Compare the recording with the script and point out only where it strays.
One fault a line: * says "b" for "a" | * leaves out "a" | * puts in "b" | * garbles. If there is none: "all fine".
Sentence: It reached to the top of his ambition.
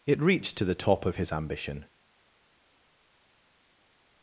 all fine